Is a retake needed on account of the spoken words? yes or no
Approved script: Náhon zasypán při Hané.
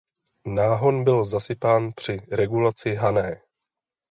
yes